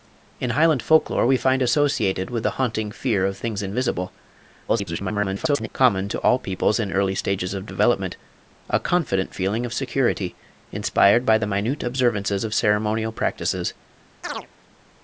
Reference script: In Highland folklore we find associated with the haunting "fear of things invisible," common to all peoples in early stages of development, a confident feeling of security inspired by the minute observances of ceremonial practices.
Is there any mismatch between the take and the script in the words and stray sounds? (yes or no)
yes